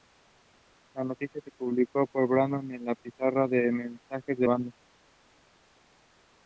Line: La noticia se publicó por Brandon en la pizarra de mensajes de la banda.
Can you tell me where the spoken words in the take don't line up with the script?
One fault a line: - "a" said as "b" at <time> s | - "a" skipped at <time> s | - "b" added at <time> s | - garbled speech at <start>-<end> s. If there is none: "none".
- "la" skipped at 4.5 s